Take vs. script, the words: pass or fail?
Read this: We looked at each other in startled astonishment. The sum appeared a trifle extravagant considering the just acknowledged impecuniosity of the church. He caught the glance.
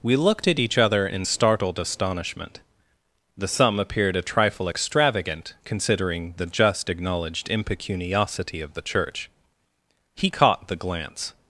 pass